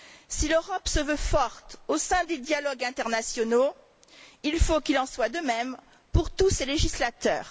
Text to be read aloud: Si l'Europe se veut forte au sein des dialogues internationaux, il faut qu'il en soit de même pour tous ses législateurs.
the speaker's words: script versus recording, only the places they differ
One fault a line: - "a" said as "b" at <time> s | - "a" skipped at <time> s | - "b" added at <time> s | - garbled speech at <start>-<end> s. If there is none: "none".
none